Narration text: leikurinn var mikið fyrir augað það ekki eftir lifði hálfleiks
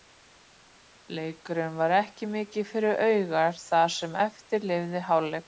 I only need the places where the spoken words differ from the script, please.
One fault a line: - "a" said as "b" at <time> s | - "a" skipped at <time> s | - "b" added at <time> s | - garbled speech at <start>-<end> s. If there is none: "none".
- "ekki" added at 2.0 s
- "ekki" said as "sem" at 4.0 s